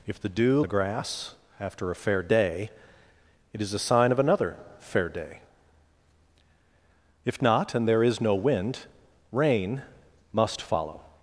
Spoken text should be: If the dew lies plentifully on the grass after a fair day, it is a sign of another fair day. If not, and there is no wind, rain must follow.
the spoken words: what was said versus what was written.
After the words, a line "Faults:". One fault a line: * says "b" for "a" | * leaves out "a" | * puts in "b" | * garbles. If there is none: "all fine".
If the dew the grass after a fair day, it is a sign of another fair day. If not, and there is no wind, rain must follow.
Faults:
* leaves out "lies plentifully on"